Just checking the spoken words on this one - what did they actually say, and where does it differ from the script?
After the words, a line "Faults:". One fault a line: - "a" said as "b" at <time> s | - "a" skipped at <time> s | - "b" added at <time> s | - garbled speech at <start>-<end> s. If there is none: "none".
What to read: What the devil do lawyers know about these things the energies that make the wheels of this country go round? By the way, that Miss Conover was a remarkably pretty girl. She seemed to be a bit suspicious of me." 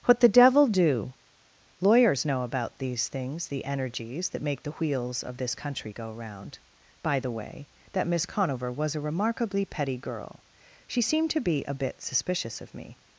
What the devil do lawyers know about these things the energies that make the wheels of this country go round? By the way, that Miss Conover was a remarkably petty girl. She seemed to be a bit suspicious of me."
Faults:
- "pretty" said as "petty" at 9.7 s